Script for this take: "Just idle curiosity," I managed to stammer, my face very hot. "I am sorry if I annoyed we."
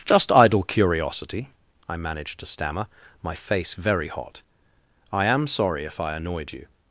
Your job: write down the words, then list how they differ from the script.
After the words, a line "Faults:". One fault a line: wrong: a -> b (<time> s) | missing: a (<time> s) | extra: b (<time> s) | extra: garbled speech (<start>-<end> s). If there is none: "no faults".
"Just idle curiosity," I managed to stammer, my face very hot. "I am sorry if I annoyed you."
Faults:
wrong: we -> you (6.5 s)